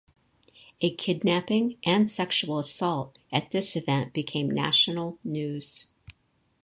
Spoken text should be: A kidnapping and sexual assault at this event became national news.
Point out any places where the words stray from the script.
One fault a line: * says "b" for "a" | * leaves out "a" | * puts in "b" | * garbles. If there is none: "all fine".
all fine